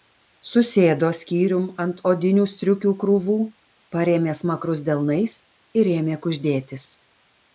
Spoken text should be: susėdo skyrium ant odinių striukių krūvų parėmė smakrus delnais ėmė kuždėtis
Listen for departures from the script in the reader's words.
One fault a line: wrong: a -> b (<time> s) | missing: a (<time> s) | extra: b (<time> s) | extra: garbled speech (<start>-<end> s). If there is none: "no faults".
extra: ir (5.8 s)